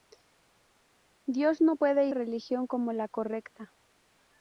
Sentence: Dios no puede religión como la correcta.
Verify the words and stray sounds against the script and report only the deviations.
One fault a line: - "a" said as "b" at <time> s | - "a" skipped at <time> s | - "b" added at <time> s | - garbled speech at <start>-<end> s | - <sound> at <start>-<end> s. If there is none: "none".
none